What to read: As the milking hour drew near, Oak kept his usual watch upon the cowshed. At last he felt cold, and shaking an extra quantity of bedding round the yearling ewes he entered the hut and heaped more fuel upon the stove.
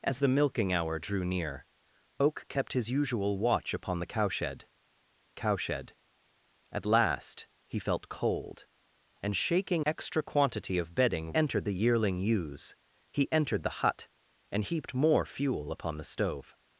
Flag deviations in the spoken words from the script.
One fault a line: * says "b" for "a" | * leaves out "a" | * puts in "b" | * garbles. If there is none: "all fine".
* puts in "cowshed"
* leaves out "an"
* says "entered" for "round"